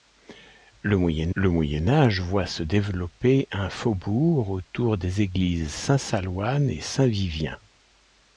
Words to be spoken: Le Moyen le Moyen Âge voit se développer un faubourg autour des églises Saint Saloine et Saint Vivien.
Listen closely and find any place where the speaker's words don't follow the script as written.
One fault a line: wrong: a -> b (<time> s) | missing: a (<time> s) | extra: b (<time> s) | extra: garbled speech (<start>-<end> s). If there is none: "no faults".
no faults